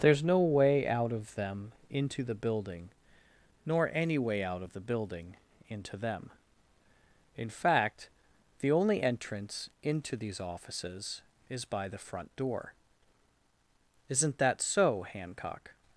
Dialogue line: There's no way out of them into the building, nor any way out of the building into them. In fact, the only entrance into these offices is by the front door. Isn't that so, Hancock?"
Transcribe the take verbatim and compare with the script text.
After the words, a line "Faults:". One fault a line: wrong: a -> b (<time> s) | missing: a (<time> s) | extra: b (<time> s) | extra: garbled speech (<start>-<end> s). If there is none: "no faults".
There's no way out of them into the building, nor any way out of the building into them. In fact, the only entrance into these offices is by the front door. Isn't that so, Hancock?"
Faults:
no faults